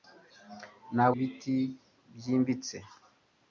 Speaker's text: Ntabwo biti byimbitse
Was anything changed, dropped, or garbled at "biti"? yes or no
no